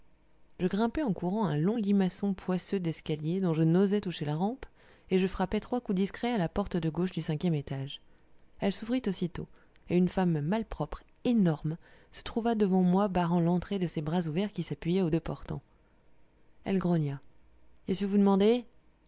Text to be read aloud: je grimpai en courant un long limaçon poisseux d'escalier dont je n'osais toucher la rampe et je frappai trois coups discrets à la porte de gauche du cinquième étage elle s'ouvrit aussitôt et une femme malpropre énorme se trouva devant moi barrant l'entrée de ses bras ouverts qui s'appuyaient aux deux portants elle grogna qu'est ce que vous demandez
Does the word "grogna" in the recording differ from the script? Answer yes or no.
no